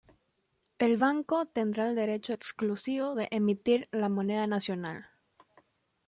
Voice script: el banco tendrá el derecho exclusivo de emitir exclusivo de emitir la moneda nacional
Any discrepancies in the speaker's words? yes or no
yes